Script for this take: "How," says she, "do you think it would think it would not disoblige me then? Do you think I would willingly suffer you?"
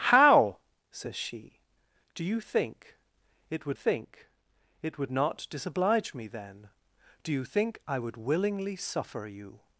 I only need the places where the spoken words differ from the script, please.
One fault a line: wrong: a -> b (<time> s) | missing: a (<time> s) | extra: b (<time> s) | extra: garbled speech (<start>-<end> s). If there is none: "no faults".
no faults